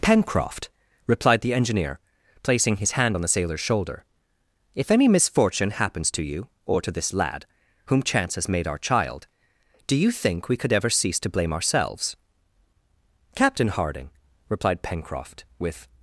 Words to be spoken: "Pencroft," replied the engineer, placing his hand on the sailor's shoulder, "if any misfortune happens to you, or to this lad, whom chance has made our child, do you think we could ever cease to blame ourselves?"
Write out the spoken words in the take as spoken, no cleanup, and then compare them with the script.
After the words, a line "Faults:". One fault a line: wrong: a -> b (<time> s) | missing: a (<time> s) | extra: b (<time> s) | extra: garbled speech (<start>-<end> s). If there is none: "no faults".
"Pencroft," replied the engineer, placing his hand on the sailor's shoulder, "if any misfortune happens to you, or to this lad, whom chance has made our child, do you think we could ever cease to blame ourselves?" "Captain Harding," replied Pencroft, with
Faults:
extra: Captain Harding replied Pencroft with (13.3 s)